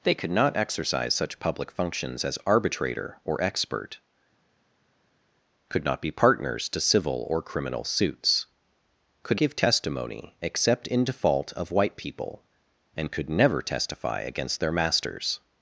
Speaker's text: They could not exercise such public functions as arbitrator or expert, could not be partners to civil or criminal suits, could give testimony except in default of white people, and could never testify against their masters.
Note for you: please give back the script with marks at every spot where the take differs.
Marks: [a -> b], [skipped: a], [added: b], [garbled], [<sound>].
They could not exercise such public functions as arbitrator or expert, could not be partners to civil or criminal suits, could give testimony except in default of white people, and could never testify against their masters.